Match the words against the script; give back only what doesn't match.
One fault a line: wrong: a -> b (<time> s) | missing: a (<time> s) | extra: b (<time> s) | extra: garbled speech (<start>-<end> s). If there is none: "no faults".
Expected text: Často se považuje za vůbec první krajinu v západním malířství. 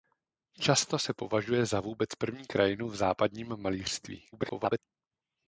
extra: garbled speech (4.3-4.8 s)